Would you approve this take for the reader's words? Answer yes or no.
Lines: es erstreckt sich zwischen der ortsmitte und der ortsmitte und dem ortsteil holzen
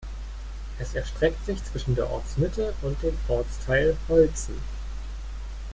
no